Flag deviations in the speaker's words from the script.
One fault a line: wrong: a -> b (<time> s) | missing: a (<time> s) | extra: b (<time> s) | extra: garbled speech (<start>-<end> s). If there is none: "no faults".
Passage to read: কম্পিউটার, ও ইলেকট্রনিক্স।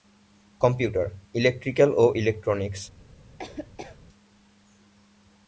extra: ইলেকট্রিক্যাল (1.4 s)